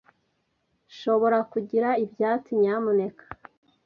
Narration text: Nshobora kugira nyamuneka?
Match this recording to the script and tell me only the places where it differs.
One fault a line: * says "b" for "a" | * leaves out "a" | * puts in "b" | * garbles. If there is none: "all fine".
* puts in "ibyatsi"